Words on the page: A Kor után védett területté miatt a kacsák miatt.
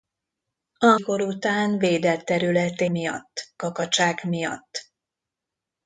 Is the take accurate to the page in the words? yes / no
yes